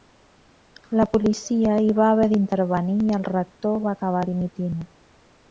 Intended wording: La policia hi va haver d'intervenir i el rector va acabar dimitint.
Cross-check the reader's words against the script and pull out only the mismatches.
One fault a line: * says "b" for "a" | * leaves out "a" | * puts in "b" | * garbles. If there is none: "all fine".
all fine